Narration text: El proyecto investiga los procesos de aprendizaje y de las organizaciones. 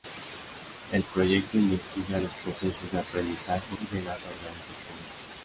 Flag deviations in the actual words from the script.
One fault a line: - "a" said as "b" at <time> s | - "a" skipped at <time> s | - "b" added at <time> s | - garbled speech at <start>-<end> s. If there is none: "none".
none